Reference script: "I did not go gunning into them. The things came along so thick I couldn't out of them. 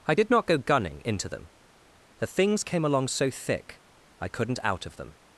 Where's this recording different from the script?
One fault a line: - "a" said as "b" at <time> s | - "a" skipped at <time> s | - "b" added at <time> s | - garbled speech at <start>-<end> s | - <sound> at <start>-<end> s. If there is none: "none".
none